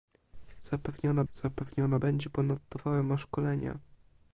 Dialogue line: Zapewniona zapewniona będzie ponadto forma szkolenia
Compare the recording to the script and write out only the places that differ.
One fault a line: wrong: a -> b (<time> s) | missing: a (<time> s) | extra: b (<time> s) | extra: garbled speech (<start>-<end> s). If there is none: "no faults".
no faults